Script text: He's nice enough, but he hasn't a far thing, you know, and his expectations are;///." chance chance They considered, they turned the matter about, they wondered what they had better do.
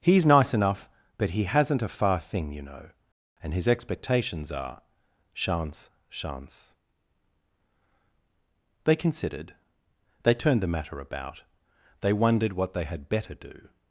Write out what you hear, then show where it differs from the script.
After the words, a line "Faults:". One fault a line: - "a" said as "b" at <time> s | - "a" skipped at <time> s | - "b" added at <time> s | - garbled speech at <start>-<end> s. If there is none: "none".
He's nice enough, but he hasn't a far thing, you know, and his expectations are;///." chance chance They considered, they turned the matter about, they wondered what they had better do.
Faults:
none